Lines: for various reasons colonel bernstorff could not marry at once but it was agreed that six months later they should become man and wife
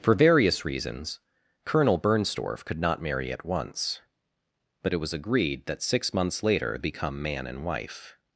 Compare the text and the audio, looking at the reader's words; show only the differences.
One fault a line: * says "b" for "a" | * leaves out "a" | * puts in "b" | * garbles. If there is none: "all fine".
* leaves out "they should"